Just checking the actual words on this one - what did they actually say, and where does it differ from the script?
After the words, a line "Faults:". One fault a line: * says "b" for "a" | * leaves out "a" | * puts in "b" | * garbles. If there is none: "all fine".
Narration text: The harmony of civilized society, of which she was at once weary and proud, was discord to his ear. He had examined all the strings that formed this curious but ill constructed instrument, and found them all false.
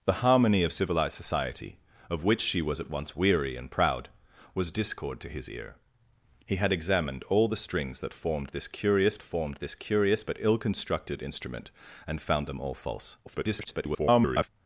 The harmony of civilized society, of which she was at once weary and proud, was discord to his ear. He had examined all the strings that formed this curious formed this curious but ill constructed instrument, and found them all false. [garbled]
Faults:
* puts in "formed this curious"
* garbles